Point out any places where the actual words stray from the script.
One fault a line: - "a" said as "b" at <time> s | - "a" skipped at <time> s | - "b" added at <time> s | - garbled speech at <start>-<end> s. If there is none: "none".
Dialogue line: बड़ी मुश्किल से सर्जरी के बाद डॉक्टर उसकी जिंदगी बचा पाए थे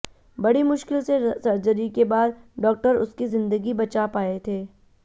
none